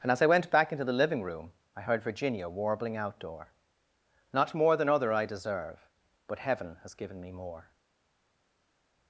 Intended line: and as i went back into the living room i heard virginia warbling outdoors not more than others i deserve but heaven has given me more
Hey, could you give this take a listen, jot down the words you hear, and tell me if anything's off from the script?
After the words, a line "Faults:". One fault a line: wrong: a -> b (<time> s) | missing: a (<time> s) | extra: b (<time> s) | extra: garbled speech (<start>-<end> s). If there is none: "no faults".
and as i went back into the living room i heard virginia warbling outdoor not more than other i deserve but heaven has given me more
Faults:
wrong: outdoors -> outdoor (3.0 s)
wrong: others -> other (4.9 s)